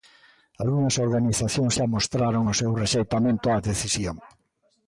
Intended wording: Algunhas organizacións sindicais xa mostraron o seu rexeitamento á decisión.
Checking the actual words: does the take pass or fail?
fail